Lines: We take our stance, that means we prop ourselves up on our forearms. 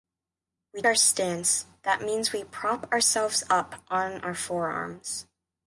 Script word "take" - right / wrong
wrong